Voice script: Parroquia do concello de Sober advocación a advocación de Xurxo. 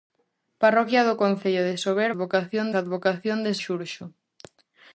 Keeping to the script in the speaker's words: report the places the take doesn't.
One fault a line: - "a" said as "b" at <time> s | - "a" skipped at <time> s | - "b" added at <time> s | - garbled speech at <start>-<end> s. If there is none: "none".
none